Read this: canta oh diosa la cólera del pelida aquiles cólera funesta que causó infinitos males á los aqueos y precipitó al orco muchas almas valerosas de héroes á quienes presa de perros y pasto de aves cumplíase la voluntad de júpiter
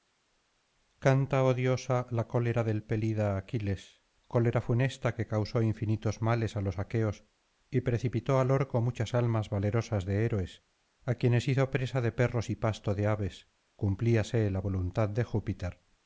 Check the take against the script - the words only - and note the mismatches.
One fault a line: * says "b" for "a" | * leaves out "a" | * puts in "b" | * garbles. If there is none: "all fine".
* puts in "hizo"